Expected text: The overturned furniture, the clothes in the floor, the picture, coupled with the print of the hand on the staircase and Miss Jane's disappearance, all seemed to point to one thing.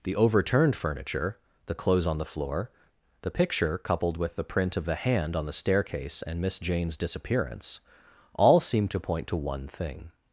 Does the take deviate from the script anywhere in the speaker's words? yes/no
yes